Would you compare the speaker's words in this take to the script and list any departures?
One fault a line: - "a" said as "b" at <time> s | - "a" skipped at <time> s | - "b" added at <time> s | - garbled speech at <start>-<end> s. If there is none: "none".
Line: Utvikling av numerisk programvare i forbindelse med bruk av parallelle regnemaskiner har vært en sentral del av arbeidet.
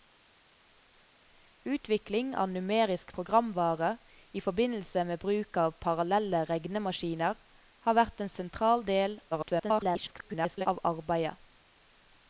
- garbled speech at 9.3-10.7 s